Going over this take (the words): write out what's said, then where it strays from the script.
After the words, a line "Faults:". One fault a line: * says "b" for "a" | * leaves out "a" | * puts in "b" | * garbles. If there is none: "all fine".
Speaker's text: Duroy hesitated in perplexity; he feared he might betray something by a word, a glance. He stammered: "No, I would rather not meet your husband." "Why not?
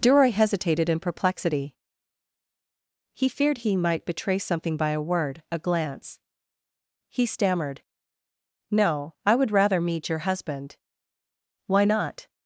Duroy hesitated in perplexity; he feared he might betray something by a word, a glance. He stammered: "No, I would rather meet your husband." "Why not?
Faults:
* leaves out "not"